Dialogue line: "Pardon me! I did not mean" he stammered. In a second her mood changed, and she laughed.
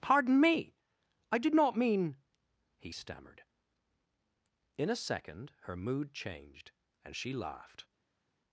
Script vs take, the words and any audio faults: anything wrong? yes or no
no